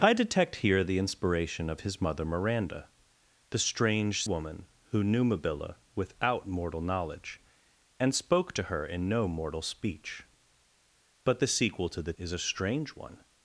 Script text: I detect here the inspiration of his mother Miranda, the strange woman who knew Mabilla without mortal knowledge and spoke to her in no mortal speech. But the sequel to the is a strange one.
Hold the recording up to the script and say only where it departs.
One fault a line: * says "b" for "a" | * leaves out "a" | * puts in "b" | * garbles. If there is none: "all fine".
all fine